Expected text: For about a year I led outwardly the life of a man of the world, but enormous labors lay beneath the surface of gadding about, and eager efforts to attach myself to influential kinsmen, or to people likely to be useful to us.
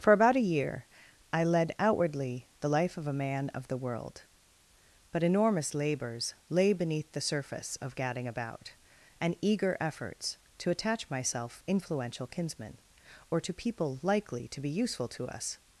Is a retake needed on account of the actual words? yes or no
yes